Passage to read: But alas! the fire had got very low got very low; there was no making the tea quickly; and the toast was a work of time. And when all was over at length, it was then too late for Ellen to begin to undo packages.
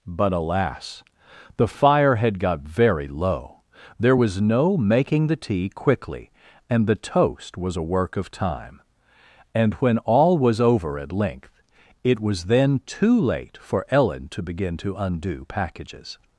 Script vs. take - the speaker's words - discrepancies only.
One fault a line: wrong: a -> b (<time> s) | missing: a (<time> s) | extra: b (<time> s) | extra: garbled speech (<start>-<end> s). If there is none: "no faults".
missing: got very low (3.6 s)